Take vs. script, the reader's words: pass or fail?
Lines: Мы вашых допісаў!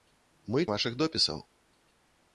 pass